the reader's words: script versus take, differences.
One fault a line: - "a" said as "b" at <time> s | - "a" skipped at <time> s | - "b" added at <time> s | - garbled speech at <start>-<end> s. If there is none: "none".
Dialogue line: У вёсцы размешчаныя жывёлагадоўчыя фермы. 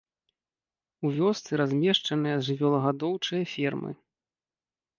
none